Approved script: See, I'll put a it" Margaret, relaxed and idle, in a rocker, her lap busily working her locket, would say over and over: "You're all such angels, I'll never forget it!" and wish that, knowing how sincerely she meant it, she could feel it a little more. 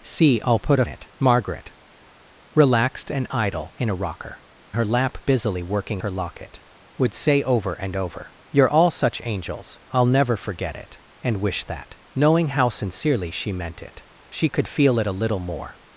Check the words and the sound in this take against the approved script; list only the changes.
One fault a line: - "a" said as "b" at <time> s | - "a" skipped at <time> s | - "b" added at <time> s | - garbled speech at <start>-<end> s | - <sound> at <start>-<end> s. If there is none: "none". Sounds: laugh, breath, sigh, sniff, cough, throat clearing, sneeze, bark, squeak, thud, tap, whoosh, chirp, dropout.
none